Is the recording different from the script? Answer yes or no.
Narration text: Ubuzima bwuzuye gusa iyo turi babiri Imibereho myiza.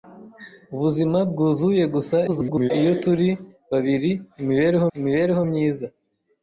yes